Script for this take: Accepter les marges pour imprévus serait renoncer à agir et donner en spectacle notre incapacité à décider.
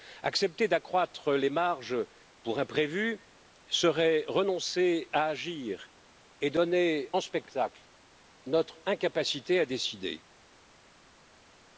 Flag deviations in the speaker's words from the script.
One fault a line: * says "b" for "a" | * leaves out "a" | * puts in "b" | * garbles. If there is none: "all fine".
* puts in "d'accroître"